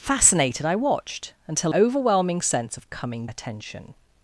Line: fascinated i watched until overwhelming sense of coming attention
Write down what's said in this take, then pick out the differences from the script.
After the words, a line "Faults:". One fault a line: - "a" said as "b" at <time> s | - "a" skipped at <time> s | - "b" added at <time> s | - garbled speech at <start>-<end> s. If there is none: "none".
fascinated i watched until overwhelming sense of coming attention
Faults:
none